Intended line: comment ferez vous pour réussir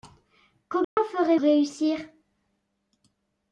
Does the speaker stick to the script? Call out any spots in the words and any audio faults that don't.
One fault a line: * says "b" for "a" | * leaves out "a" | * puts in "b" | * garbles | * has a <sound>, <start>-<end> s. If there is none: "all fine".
* has a dropout, 0.8-1.0 s
* leaves out "vous pour"